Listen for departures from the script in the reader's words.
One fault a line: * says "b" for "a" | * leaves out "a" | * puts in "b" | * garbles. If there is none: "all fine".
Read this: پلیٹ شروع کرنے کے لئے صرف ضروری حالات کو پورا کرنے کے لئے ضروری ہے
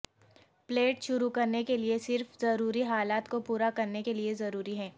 all fine